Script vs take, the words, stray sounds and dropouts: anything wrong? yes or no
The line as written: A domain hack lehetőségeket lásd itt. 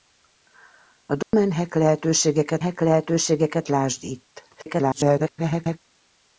yes